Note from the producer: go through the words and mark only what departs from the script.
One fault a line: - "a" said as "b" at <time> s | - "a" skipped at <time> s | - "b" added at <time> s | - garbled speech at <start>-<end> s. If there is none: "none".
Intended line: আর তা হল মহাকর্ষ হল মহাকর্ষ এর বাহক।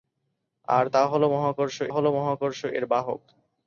none